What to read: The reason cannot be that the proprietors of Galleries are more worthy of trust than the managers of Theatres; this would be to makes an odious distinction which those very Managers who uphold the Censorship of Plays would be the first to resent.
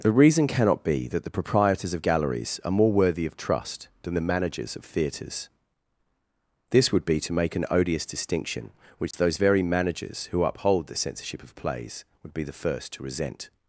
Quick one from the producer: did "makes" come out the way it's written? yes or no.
no